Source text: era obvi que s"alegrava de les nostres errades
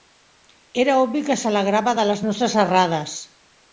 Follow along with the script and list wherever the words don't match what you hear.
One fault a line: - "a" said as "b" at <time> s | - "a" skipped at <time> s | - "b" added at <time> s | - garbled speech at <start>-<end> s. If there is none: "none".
none